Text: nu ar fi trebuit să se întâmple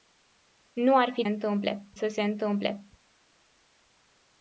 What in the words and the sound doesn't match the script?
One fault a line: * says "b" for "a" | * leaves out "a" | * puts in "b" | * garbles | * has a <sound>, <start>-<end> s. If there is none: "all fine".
* says "întâmple" for "trebuit"